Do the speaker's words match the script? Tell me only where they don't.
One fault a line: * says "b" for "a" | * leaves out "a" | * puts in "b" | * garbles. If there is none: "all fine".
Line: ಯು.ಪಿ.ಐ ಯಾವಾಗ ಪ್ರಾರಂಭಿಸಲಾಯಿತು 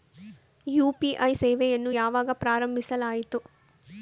* puts in "ಸೇವೆಯನ್ನು"